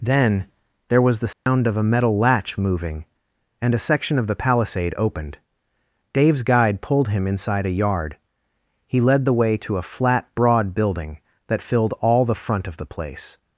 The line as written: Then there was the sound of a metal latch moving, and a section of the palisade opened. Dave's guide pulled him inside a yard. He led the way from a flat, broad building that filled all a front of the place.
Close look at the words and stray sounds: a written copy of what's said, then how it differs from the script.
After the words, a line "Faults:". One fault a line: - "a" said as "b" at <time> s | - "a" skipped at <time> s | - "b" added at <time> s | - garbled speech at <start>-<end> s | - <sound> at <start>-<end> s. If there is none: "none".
Then there was the sound of a metal latch moving, and a section of the palisade opened. Dave's guide pulled him inside a yard. He led the way to a flat, broad building that filled all the front of the place.
Faults:
- dropout at 1.3-1.5 s
- "from" said as "to" at 9.6 s
- "a" said as "the" at 12.2 s